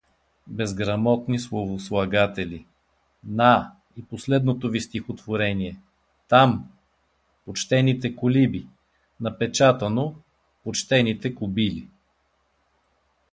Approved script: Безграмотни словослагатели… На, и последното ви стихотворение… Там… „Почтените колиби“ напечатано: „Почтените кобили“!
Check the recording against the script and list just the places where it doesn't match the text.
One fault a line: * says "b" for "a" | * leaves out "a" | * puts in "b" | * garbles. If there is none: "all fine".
all fine